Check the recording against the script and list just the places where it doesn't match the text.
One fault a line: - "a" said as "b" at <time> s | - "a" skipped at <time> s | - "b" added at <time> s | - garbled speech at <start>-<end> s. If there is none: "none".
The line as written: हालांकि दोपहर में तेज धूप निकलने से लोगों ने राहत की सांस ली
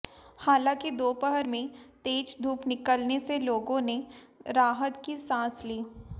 none